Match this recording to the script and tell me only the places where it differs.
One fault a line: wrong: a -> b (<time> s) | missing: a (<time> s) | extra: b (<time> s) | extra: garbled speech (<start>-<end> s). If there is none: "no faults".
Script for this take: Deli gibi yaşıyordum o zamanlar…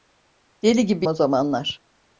missing: yaşıyordum (1.1 s)